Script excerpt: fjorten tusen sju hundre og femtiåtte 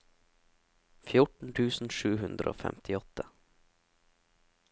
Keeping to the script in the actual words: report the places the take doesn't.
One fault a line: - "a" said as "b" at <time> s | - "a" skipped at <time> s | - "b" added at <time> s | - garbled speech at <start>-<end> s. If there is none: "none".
none